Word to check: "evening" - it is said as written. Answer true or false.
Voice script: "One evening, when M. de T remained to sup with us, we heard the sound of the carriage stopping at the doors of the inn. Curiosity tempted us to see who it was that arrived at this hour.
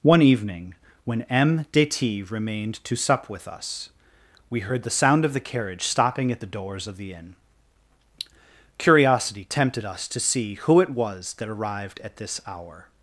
true